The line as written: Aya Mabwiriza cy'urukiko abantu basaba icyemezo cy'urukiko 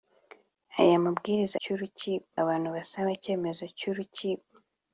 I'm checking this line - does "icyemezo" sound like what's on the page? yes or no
yes